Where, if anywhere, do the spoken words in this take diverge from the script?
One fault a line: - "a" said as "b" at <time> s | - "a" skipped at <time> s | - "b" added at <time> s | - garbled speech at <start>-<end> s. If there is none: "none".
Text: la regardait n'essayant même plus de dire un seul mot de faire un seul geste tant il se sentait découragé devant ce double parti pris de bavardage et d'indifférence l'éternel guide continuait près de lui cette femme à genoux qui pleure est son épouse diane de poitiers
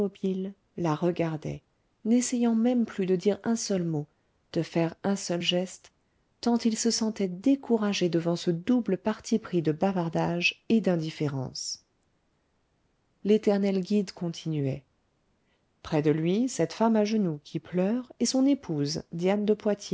none